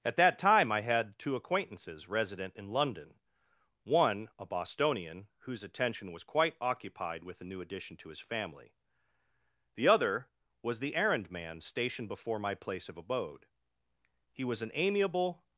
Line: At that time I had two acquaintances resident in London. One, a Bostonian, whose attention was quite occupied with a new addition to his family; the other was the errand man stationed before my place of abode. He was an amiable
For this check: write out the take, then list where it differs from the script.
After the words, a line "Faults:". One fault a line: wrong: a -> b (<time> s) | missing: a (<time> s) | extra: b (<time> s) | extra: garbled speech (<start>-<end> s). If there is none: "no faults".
At that time I had two acquaintances resident in London. One, a Bostonian, whose attention was quite occupied with a new addition to his family; the other was the errand man stationed before my place of abode. He was an amiable
Faults:
no faults